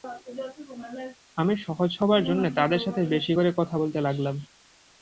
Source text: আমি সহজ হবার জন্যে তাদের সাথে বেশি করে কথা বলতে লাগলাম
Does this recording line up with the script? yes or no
yes